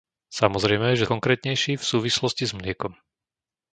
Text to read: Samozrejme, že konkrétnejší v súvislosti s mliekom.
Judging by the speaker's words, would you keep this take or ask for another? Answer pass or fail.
pass